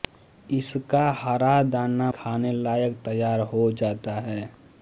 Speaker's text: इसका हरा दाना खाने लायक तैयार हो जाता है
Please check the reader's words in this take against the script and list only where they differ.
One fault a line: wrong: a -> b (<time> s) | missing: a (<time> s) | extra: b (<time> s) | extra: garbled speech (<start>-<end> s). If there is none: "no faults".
no faults